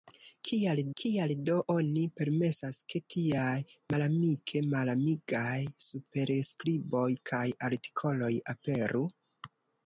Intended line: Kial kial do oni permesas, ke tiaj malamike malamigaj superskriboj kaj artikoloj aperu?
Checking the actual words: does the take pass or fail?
pass